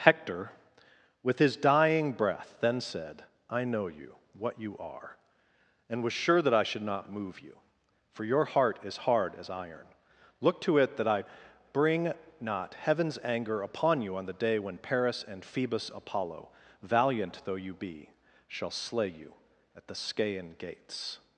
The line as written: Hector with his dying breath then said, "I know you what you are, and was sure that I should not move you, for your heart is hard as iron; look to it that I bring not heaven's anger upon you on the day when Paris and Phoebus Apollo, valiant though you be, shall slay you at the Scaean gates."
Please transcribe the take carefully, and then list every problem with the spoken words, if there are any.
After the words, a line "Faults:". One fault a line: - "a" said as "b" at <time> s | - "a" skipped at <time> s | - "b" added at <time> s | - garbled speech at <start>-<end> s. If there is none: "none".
Hector with his dying breath then said, "I know you what you are, and was sure that I should not move you, for your heart is hard as iron; look to it that I bring not heaven's anger upon you on the day when Paris and Phoebus Apollo, valiant though you be, shall slay you at the Scaean gates."
Faults:
none